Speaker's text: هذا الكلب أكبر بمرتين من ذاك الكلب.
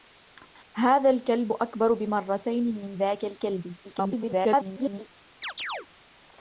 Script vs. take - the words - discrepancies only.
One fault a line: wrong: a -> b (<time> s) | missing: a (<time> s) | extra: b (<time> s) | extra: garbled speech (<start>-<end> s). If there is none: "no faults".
extra: garbled speech (3.8-5.1 s)